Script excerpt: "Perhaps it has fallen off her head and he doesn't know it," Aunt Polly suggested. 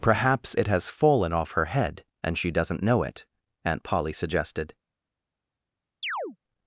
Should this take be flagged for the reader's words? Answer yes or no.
yes